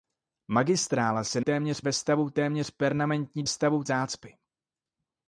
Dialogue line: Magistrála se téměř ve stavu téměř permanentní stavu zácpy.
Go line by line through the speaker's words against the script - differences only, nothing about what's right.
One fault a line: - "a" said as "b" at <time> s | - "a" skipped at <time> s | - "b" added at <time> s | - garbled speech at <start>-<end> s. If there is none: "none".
none